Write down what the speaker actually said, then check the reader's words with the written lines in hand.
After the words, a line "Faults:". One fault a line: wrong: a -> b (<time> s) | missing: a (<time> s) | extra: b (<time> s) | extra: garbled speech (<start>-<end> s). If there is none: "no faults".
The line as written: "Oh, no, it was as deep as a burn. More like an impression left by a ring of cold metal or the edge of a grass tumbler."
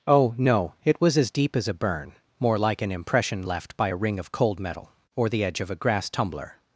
"Oh, no, it was as deep as a burn. More like an impression left by a ring of cold metal or the edge of a grass tumbler."
Faults:
no faults